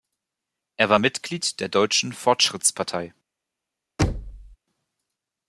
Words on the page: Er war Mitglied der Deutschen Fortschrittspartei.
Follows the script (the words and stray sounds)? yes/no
no